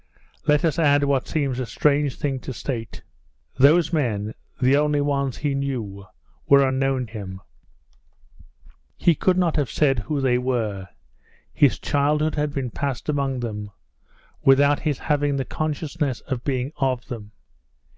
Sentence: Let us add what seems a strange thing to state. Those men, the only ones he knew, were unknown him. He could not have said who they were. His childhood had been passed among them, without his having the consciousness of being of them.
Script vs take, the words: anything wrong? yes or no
no